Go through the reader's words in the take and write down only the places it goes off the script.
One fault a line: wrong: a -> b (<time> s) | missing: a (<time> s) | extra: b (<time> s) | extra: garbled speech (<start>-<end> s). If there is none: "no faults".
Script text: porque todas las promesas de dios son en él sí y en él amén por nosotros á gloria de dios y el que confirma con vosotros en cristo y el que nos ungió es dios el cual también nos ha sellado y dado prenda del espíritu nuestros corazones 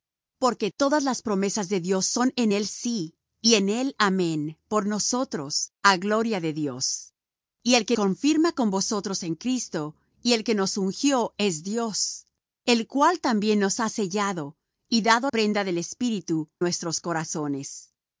no faults